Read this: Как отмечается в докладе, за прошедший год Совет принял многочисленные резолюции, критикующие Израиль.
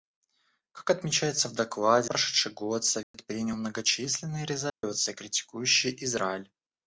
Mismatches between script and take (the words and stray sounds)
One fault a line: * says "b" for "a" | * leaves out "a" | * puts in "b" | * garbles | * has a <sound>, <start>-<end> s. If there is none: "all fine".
* leaves out "за"
* has a dropout, 3.0-3.1 s
* has a dropout, 4.7-4.8 s